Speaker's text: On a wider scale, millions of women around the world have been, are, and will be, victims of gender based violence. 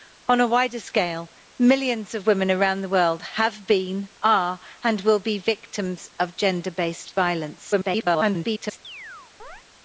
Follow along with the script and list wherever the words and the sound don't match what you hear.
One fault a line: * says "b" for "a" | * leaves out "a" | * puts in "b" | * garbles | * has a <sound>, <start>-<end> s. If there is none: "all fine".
* garbles
* has a chirp, 8.8-9.6 s